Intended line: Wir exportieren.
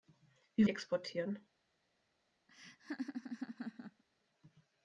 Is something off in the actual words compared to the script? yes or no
no